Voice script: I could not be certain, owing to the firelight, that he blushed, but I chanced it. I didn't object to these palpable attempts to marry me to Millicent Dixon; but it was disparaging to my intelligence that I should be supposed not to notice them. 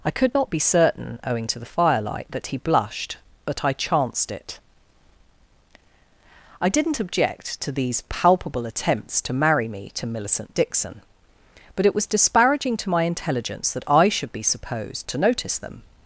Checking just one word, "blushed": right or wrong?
right